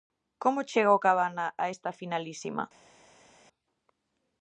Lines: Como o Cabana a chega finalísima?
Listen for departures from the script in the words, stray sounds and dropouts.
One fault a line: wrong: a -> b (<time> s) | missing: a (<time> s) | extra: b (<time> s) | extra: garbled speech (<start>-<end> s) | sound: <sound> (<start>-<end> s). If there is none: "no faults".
extra: chega (0.7 s)
wrong: chega -> esta (1.7 s)